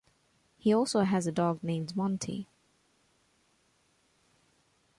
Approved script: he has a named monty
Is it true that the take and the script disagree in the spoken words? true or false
true